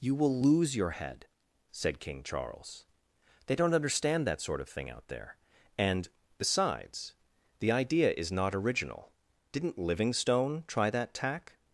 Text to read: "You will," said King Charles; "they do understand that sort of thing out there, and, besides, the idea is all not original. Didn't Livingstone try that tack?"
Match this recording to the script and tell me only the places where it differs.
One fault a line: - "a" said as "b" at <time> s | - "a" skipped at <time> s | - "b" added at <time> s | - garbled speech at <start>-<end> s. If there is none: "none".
- "lose your head" added at 0.4 s
- "do" said as "don't" at 3.5 s
- "all" skipped at 8.3 s